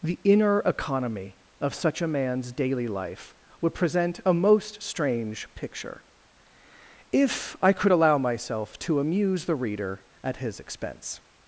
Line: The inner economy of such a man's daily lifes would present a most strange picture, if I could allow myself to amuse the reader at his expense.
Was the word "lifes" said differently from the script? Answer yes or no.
yes